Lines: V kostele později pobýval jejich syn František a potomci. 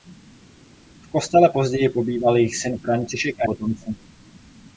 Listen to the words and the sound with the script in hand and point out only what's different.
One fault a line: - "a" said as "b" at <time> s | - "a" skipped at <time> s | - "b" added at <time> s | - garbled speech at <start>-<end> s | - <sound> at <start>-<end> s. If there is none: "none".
none